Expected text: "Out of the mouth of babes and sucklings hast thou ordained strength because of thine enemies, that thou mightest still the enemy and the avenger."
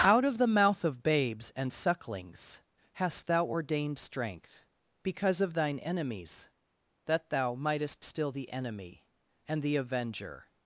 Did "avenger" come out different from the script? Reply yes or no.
no